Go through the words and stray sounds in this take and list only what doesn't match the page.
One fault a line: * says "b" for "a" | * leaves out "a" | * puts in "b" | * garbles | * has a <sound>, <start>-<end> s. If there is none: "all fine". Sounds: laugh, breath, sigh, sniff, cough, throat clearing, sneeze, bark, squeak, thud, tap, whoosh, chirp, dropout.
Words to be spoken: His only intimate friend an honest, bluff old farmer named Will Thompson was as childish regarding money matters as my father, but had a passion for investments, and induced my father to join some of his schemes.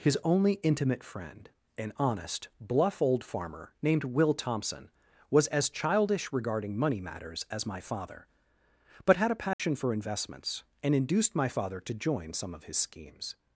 * has a dropout, 9.5-9.6 s